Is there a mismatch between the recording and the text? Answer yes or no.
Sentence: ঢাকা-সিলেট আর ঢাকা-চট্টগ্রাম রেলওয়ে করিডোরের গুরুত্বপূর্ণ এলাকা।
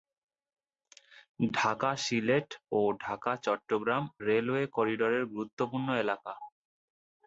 yes